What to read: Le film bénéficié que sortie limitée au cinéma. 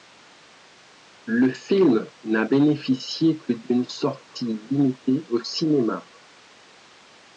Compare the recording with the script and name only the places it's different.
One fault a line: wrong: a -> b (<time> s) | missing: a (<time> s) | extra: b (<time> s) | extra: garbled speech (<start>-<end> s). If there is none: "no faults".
extra: n'a (2.2 s)
extra: d'une (3.5 s)